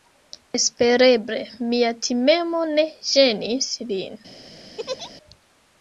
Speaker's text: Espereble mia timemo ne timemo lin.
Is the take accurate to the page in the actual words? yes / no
no